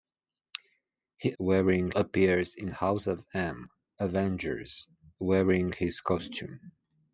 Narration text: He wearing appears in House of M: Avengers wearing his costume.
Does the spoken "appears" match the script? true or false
true